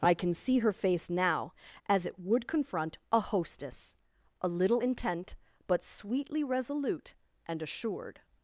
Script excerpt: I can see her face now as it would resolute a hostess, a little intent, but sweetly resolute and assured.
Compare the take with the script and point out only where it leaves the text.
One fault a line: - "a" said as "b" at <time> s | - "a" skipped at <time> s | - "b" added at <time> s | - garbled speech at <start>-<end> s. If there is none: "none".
- "resolute" said as "confront" at 2.5 s